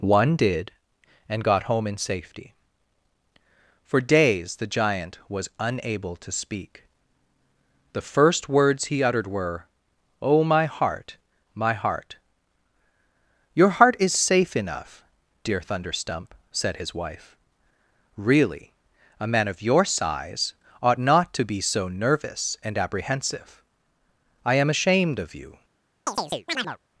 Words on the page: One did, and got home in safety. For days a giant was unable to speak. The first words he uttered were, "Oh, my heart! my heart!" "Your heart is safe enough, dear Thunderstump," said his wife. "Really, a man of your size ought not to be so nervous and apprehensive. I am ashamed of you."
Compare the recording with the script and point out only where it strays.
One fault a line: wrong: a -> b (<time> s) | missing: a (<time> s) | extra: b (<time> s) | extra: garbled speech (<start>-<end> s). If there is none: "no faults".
wrong: a -> the (4.5 s)